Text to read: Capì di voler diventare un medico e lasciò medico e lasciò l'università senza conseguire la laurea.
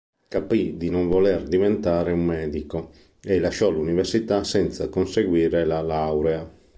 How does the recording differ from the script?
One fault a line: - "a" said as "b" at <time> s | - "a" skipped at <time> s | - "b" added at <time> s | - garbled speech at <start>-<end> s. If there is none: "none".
- "non" added at 0.9 s
- "medico e lasciò" skipped at 3.7 s